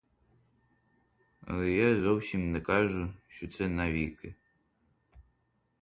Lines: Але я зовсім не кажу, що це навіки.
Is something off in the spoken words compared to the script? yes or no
no